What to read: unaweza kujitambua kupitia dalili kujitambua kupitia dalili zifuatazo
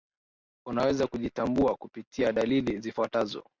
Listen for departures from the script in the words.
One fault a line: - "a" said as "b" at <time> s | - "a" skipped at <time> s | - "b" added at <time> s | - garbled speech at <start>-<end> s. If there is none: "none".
- "kujitambua kupitia dalili" skipped at 2.8 s